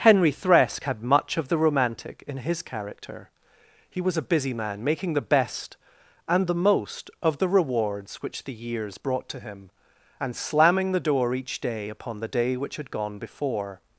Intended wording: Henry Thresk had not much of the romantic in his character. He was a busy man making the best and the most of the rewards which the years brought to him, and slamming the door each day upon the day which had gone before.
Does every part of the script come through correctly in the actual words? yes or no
no